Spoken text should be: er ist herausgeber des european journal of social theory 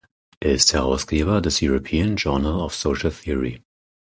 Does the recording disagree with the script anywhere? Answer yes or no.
no